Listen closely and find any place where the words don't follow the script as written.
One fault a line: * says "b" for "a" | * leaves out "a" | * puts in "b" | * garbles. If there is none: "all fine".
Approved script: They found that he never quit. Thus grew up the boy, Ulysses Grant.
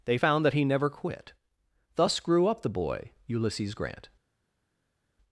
all fine